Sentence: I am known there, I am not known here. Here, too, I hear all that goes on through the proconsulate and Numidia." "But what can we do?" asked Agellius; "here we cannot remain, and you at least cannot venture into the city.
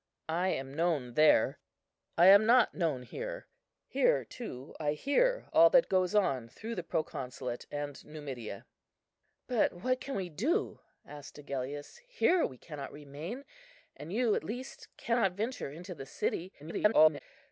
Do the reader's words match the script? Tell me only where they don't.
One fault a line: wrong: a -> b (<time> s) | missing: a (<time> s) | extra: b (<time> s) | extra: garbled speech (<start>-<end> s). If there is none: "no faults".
extra: garbled speech (16.6-17.2 s)